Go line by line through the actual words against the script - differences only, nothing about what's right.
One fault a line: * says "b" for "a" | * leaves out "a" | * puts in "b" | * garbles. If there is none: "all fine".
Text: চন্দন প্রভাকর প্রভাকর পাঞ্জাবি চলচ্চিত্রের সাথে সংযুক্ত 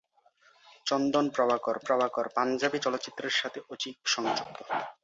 all fine